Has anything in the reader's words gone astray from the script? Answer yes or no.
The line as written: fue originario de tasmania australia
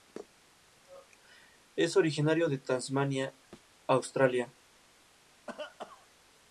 yes